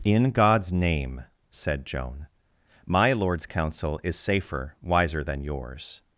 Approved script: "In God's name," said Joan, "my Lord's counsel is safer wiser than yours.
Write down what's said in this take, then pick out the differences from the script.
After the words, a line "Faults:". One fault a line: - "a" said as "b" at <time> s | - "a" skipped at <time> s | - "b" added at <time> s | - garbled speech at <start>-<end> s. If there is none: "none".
"In God's name," said Joan, "my Lord's counsel is safer wiser than yours.
Faults:
none